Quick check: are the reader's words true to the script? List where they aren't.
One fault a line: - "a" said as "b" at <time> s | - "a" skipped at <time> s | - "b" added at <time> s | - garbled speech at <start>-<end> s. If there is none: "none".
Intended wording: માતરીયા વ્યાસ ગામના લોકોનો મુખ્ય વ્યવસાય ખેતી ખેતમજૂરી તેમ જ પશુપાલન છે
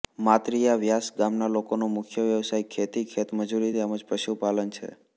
none